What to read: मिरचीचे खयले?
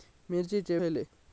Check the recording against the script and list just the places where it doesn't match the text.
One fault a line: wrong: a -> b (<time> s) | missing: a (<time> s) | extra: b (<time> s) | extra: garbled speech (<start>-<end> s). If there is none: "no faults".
no faults